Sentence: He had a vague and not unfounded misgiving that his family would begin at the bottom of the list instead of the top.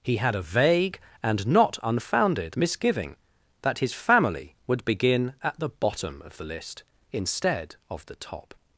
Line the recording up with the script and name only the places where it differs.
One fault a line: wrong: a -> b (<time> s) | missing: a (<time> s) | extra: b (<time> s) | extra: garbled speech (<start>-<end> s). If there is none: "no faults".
no faults